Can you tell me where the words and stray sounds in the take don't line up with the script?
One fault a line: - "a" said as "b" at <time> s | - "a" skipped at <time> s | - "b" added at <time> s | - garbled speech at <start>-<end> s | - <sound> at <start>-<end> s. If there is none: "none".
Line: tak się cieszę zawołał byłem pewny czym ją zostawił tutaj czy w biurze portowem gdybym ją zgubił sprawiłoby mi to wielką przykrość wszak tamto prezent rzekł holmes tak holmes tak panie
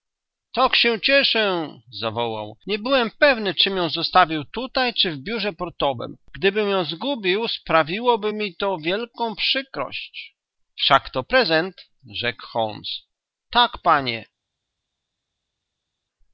- "nie" added at 2.7 s
- "tamto" said as "to" at 11.1 s
- "holmes tak" skipped at 13.8 s